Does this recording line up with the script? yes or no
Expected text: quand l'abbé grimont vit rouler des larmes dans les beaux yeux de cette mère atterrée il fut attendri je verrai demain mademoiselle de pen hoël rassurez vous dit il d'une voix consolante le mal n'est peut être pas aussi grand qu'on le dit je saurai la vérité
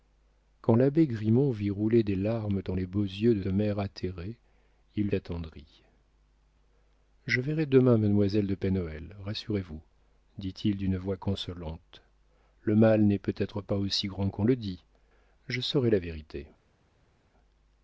no